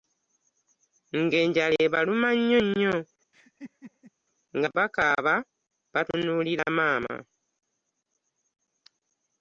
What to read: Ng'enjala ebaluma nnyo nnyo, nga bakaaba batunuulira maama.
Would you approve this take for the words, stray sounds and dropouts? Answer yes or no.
no